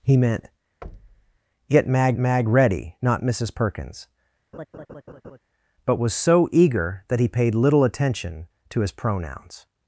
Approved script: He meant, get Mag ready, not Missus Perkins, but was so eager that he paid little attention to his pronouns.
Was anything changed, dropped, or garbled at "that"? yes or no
no